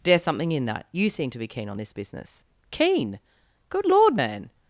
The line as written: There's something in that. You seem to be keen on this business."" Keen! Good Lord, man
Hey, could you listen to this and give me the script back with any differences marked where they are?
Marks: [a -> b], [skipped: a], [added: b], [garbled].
There's something in that. You seem to be keen on this business."" Keen! Good Lord, man